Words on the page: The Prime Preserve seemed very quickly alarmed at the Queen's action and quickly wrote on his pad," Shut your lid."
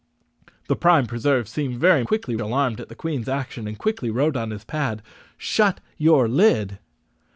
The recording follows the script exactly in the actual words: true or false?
true